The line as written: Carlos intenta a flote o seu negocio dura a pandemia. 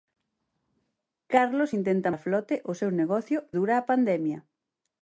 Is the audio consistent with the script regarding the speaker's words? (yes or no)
yes